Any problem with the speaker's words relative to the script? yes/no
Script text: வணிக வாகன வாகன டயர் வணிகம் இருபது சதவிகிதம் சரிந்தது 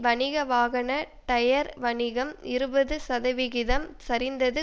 yes